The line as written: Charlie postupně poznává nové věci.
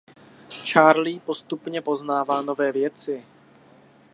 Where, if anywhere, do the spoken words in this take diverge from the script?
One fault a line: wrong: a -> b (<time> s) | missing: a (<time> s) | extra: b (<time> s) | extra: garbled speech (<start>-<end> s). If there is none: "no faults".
no faults